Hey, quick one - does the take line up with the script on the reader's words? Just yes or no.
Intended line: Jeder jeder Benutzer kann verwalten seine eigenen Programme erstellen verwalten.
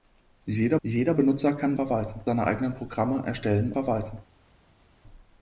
yes